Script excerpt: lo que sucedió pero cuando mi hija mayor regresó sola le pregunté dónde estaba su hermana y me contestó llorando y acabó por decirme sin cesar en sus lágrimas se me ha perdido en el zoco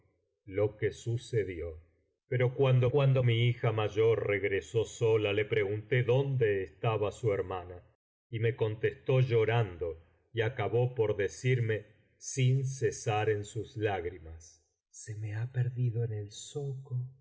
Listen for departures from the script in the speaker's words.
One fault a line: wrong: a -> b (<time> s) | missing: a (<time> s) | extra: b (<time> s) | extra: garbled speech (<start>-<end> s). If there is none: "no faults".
extra: cuando (2.9 s)